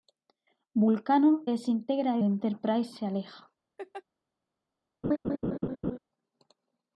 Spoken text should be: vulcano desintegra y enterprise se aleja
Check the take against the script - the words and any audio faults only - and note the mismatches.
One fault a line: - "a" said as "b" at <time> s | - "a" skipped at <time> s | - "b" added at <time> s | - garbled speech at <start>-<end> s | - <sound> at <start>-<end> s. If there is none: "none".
- laugh at 3.8-4.0 s
- laugh at 5.0-6.0 s